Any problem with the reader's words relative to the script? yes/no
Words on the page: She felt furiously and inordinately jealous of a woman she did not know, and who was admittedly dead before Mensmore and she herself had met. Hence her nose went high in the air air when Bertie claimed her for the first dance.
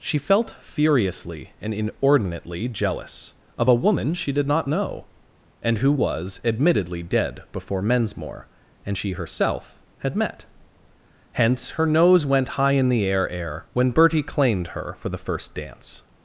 no